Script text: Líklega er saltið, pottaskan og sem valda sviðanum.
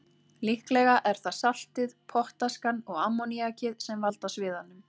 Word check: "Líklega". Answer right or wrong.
right